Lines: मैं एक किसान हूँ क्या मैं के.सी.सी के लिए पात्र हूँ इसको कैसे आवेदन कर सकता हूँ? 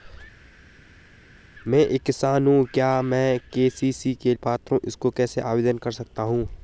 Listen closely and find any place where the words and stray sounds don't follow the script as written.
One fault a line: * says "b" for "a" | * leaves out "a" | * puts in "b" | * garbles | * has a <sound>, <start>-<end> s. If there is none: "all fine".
* leaves out "लिए"